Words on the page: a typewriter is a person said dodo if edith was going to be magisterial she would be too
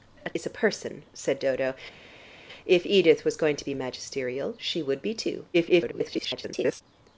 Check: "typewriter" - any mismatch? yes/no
yes